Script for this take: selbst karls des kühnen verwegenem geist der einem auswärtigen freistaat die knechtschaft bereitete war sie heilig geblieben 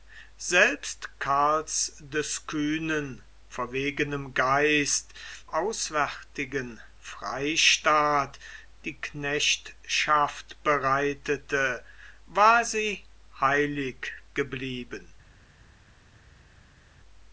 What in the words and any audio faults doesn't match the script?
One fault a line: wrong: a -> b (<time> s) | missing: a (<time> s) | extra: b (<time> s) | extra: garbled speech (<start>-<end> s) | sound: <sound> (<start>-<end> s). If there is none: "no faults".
missing: der einem (5.1 s)